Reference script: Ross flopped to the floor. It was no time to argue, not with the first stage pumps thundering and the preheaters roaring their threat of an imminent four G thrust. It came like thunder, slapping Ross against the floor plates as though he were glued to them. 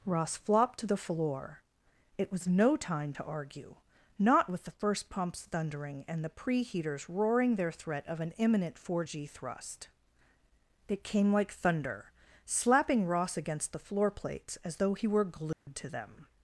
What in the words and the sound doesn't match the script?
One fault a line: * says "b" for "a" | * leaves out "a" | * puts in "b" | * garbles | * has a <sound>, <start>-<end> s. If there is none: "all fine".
* leaves out "stage"
* has a dropout, 15.5-15.7 s